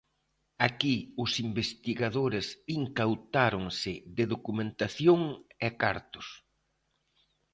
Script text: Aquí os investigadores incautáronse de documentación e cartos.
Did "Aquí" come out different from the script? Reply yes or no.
no